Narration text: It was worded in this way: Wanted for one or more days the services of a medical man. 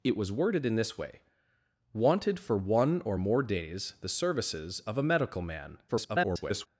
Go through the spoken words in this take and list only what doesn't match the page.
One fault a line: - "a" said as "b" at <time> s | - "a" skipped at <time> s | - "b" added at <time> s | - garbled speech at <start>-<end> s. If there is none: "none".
- garbled speech at 5.9-6.7 s